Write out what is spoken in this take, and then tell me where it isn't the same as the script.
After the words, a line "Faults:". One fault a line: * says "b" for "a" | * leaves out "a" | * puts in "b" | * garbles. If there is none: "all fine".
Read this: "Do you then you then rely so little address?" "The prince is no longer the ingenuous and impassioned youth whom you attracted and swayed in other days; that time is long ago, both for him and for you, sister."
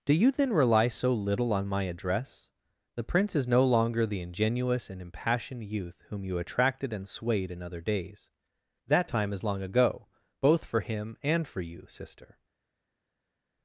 "Do you then rely so little on my address?" "The prince is no longer the ingenuous and impassioned youth whom you attracted and swayed in other days; that time is long ago, both for him and for you, sister."
Faults:
* leaves out "you then"
* puts in "on my"